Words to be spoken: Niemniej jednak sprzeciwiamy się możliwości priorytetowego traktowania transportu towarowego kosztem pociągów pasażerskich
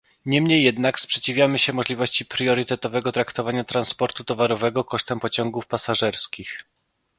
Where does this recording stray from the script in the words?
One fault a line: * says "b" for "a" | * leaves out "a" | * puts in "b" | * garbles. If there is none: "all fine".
all fine